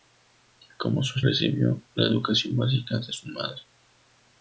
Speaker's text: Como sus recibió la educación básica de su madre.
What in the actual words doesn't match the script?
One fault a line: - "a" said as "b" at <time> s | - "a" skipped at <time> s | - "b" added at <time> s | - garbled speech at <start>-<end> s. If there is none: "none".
none